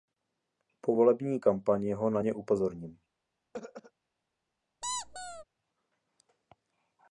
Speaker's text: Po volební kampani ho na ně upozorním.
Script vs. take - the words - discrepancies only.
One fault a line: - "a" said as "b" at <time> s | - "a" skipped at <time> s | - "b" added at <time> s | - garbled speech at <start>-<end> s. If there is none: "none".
none